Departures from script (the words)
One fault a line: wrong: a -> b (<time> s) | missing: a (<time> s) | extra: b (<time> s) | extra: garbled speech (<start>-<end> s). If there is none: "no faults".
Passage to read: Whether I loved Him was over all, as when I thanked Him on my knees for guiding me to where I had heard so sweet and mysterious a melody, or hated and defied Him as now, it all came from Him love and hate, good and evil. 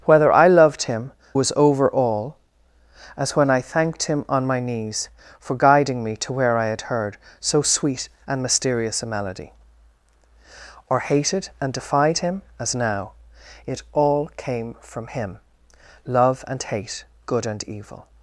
no faults